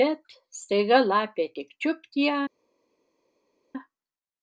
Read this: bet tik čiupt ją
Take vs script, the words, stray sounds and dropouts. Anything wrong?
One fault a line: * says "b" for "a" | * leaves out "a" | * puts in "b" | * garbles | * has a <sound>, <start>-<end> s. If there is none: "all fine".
* puts in "staiga lapė"